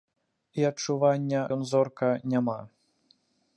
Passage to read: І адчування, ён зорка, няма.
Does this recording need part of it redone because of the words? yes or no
no